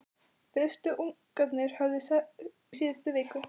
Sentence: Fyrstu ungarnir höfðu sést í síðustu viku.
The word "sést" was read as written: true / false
false